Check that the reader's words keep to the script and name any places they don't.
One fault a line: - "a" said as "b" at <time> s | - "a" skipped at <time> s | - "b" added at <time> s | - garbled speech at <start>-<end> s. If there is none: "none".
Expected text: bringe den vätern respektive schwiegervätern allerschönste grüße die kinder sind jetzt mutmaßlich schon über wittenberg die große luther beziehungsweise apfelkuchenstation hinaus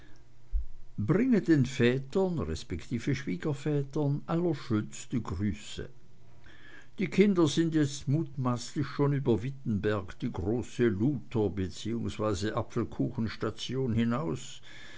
none